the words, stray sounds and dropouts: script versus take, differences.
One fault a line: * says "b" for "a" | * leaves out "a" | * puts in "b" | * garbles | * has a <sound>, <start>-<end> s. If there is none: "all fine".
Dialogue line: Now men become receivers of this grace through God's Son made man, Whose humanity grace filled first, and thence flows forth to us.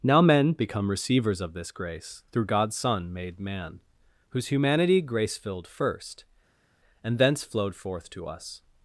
* says "flowed" for "flows"